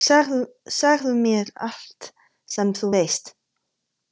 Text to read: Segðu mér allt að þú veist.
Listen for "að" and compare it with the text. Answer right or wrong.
wrong